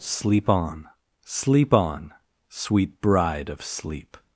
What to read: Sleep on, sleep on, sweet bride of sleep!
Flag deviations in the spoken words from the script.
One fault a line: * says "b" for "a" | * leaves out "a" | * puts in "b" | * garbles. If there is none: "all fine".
all fine